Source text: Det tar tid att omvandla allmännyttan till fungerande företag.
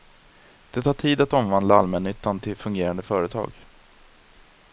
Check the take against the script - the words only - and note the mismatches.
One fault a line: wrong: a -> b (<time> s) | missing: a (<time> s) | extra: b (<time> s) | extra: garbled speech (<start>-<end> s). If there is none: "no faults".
no faults